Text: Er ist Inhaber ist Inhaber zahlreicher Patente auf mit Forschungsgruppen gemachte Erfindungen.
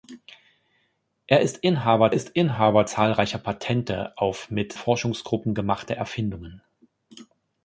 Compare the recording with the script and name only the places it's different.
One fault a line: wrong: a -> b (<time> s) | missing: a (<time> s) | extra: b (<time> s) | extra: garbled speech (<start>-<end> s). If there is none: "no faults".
no faults